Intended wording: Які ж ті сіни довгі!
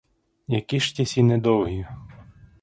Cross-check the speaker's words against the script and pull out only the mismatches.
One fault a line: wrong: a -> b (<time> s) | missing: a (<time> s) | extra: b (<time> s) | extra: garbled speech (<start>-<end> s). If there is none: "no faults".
no faults